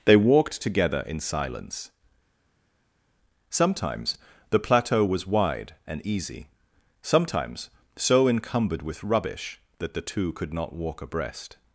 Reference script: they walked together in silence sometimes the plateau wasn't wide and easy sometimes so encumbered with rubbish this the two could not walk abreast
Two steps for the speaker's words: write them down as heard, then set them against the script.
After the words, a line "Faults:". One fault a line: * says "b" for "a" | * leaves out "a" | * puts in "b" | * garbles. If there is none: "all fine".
they walked together in silence sometimes the plateau was wide and easy sometimes so encumbered with rubbish that the two could not walk abreast
Faults:
* says "was" for "wasn't"
* says "that" for "this"